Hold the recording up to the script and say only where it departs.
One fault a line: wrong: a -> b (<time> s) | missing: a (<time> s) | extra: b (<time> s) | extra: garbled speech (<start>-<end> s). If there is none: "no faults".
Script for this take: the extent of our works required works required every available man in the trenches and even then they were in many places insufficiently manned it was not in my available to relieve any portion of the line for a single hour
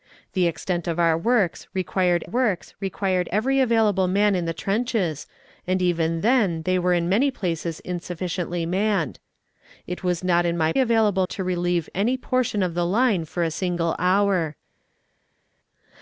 no faults